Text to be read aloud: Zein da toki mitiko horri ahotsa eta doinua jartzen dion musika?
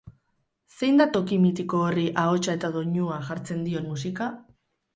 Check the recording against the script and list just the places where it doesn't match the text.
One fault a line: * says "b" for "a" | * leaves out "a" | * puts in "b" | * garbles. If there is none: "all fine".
all fine